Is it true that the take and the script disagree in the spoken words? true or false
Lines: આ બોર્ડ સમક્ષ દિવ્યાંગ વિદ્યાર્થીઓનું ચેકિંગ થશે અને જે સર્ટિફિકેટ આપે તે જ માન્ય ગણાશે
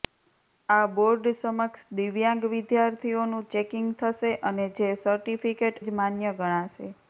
true